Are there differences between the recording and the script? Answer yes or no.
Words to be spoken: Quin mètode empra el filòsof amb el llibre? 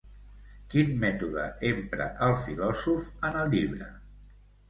yes